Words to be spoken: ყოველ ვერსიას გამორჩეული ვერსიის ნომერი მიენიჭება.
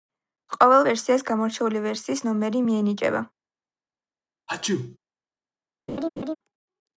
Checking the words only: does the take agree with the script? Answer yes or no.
yes